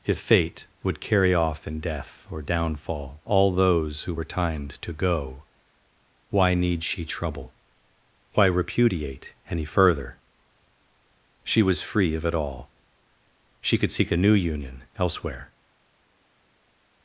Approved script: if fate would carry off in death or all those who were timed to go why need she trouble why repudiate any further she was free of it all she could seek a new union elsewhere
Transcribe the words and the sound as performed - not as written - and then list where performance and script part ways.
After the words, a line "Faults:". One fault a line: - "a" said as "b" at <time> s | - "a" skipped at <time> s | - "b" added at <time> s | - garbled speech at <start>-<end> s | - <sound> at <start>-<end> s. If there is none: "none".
if fate would carry off in death or downfall all those who were timed to go why need she trouble why repudiate any further she was free of it all she could seek a new union elsewhere
Faults:
- "downfall" added at 2.4 s